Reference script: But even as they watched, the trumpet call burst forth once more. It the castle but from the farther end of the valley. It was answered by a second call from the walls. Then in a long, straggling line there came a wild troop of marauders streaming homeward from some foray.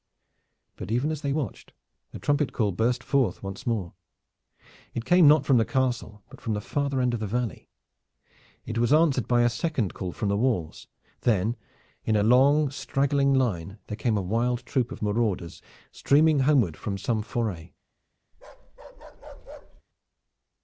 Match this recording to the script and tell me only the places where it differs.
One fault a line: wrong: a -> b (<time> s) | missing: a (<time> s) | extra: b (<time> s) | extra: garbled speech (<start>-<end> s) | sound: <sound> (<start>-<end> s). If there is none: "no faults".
extra: came not from (5.0 s)
sound: bark (18.3-19.8 s)